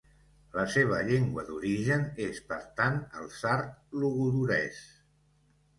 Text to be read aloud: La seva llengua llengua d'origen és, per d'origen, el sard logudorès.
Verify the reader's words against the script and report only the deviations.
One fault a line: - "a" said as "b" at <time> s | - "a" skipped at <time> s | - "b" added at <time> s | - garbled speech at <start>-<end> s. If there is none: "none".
- "llengua" skipped at 1.4 s
- "d'origen" said as "tant" at 2.8 s